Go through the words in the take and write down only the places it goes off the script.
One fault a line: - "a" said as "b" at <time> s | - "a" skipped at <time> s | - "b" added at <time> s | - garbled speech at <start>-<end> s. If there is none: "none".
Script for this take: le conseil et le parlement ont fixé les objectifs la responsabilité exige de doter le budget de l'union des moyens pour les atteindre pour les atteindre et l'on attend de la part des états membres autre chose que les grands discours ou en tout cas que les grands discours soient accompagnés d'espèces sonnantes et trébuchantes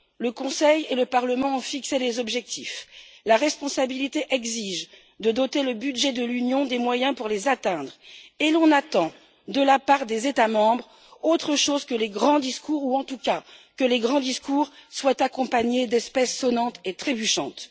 - "pour les atteindre" skipped at 7.9 s